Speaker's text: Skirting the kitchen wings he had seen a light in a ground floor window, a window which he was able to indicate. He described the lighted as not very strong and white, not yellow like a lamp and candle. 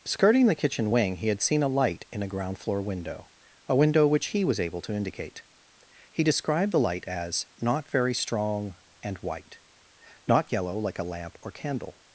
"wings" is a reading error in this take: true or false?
true